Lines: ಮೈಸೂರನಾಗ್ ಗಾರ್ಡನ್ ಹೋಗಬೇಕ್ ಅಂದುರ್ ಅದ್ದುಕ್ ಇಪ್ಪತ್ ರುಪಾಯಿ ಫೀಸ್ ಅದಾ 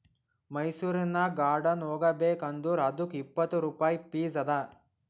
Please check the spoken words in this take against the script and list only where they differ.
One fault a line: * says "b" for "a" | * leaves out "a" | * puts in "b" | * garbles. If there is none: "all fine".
all fine